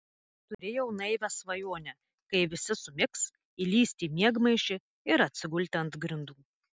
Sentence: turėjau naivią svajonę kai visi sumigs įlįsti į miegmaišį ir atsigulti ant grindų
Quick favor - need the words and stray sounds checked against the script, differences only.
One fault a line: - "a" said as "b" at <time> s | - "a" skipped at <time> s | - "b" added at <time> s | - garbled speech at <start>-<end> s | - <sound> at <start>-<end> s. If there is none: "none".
- dropout at 0.5-0.6 s